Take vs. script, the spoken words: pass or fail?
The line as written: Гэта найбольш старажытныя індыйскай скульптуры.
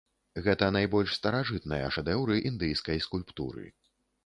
fail